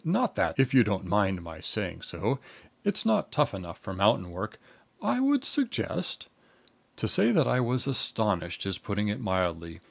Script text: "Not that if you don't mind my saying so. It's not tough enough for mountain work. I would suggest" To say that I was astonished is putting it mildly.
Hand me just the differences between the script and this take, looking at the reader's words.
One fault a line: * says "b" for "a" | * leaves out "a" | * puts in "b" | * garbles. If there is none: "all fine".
all fine